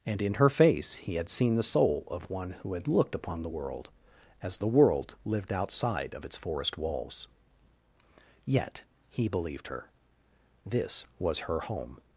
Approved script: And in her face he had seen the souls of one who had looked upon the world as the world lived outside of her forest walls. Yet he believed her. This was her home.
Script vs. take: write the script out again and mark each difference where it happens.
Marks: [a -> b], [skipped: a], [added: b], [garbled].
And in her face he had seen the [souls -> soul] of one who had looked upon the world as the world lived outside of [her -> its] forest walls. Yet he believed her. This was her home.